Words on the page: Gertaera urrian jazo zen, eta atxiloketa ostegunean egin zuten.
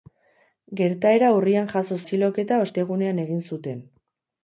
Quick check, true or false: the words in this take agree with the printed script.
false